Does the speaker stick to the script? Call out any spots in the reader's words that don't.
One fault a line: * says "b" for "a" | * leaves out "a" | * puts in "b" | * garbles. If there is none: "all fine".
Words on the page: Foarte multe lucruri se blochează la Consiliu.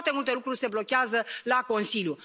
all fine